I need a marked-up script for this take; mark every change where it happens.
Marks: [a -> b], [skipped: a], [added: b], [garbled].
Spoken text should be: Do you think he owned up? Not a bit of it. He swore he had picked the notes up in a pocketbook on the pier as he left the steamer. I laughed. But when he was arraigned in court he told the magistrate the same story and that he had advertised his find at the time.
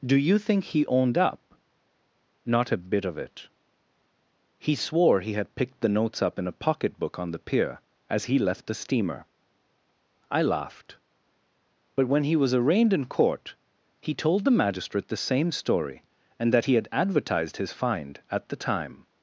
Do you think he owned up? Not a bit of it. He swore he had picked the notes up in a pocketbook on the pier as he left the steamer. I laughed. But when he was arraigned in court he told the magistrate the same story and that he had advertised his find at the time.